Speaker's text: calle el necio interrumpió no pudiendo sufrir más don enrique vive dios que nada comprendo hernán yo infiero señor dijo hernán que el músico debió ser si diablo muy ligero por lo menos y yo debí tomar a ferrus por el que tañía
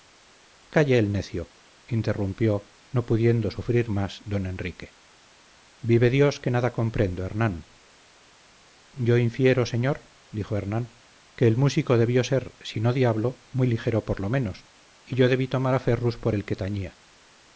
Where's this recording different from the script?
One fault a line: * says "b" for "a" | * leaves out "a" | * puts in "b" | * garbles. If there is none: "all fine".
* puts in "no"